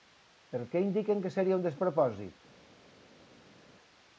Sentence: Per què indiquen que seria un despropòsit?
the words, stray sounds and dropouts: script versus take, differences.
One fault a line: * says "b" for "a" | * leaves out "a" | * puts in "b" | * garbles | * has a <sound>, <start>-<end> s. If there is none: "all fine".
all fine